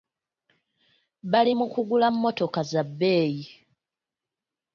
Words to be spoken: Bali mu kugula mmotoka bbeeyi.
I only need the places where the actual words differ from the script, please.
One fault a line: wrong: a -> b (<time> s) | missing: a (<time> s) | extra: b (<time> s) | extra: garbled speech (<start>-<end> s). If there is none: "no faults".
extra: za (2.7 s)